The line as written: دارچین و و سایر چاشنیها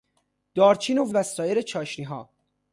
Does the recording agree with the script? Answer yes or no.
yes